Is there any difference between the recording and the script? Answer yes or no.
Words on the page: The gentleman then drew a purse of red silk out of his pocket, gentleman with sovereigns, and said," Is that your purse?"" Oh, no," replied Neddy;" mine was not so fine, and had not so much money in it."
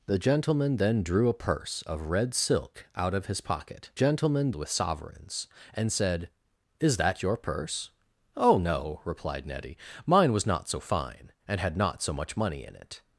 no